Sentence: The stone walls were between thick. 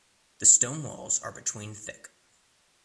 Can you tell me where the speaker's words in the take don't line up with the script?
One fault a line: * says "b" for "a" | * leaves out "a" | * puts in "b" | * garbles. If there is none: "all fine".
* says "are" for "were"